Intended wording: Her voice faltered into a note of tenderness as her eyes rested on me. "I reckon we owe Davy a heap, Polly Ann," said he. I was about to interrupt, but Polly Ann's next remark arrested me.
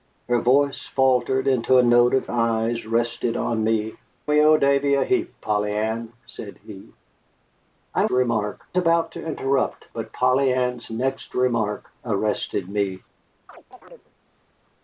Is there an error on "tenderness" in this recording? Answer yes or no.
yes